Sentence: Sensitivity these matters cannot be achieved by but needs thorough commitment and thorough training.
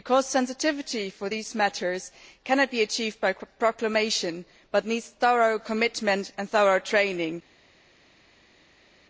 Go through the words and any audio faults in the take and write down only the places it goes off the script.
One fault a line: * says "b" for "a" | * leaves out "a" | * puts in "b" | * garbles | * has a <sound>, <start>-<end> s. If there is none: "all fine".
* puts in "for"
* puts in "proclamation"